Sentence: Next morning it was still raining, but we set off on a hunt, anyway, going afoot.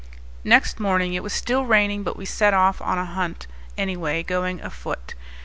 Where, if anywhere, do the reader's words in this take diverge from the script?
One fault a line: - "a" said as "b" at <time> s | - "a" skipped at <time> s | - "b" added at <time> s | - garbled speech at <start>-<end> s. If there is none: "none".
none